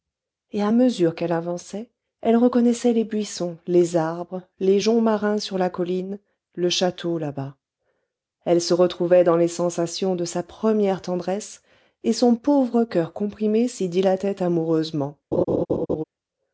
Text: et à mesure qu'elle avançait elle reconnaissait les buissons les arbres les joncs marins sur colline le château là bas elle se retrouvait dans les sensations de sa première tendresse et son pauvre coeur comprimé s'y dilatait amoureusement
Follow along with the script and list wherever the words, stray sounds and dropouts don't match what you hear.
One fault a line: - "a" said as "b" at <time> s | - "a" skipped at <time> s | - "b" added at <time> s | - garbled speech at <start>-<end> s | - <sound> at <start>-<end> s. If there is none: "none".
- "la" added at 5.6 s
- laugh at 15.3-16.0 s